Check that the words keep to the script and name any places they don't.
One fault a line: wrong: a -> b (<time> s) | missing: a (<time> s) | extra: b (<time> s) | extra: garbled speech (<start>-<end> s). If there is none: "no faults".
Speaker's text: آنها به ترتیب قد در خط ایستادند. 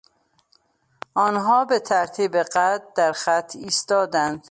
no faults